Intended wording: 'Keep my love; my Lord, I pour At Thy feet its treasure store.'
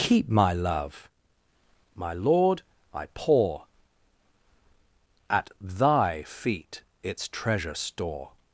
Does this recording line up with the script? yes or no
yes